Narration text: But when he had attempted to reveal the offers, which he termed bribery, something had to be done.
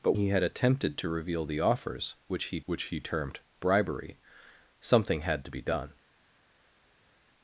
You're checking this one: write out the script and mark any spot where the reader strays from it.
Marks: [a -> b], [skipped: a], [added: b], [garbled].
But [skipped: when] he had attempted to reveal the offers, which he [added: which he] termed bribery, something had to be done.